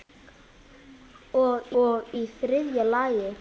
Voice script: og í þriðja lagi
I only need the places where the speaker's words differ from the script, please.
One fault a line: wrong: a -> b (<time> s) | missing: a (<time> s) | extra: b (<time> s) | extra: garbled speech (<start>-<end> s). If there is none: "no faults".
extra: og (1.8 s)